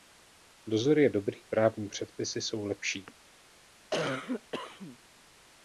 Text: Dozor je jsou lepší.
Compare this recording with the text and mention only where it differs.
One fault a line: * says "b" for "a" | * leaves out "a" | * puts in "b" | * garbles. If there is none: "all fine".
* puts in "dobrý právní předpisy"